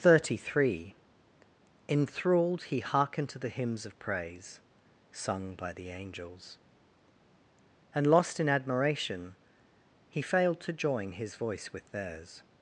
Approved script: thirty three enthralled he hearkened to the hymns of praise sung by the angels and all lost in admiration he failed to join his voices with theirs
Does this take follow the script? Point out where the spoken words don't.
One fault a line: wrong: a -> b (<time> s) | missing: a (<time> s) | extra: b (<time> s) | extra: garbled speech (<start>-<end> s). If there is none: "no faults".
missing: all (8.1 s)
wrong: voices -> voice (11.3 s)